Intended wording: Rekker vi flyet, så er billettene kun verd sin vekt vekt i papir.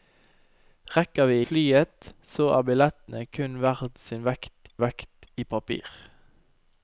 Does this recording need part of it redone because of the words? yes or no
no